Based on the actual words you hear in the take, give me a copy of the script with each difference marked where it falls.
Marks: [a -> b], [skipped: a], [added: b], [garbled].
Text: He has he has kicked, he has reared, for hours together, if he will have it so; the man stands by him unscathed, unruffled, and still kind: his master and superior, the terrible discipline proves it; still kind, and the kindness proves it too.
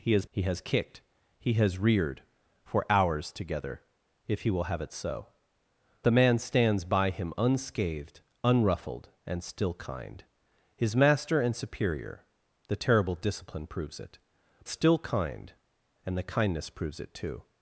He has he has kicked, he has reared, for hours together, if he will have it so; the man stands by him unscathed, unruffled, and still kind: his master and superior, the terrible discipline proves it; still kind, and the kindness proves it too.